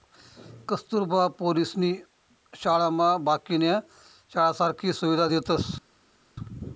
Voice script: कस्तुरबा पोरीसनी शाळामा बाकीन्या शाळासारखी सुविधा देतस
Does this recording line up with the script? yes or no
yes